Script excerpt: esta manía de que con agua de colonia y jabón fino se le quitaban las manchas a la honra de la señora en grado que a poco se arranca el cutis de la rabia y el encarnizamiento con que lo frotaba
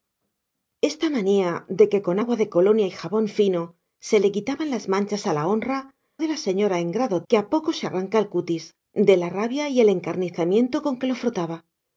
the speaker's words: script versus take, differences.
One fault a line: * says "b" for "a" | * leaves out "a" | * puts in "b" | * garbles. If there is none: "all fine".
all fine